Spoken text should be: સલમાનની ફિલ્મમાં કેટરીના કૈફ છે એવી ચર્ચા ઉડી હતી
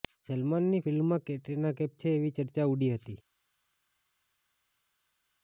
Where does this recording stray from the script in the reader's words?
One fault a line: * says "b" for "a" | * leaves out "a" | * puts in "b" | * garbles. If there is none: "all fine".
all fine